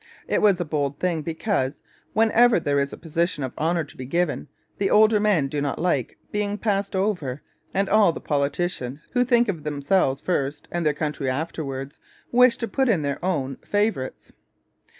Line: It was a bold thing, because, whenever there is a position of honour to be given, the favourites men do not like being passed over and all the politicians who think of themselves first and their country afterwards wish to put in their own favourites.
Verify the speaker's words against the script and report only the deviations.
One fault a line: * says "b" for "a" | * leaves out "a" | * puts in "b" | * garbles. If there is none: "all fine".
* says "older" for "favourites"